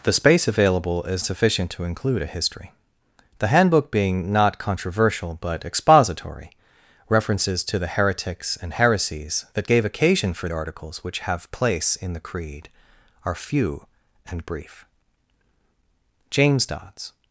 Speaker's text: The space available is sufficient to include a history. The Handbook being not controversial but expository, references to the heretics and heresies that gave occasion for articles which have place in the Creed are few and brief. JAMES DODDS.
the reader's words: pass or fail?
pass